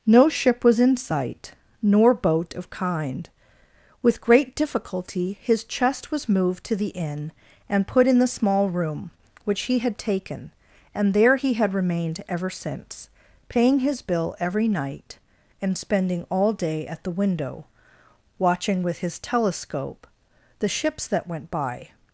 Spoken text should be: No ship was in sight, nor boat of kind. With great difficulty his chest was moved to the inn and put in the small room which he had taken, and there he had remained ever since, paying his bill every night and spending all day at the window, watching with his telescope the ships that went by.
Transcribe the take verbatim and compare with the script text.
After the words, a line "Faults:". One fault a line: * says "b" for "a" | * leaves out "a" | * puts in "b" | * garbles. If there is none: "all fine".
No ship was in sight, nor boat of kind. With great difficulty his chest was moved to the inn and put in the small room which he had taken, and there he had remained ever since, paying his bill every night and spending all day at the window, watching with his telescope the ships that went by.
Faults:
all fine